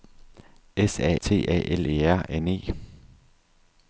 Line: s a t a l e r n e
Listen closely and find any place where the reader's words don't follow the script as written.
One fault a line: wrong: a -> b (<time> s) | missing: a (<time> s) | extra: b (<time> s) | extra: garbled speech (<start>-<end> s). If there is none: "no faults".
no faults